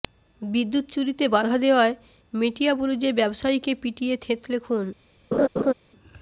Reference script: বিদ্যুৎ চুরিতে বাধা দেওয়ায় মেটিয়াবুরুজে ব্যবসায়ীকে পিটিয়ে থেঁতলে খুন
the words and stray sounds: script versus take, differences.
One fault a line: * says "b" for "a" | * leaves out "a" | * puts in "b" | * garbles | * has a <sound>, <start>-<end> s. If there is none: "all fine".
* has a laugh, 5.3-5.7 s